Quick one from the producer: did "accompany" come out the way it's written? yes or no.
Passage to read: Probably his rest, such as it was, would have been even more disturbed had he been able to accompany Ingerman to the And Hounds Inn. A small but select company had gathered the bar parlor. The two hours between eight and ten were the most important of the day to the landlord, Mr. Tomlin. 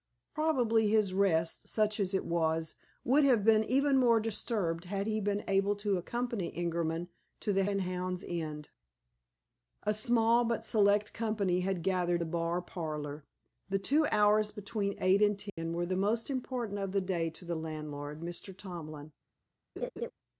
yes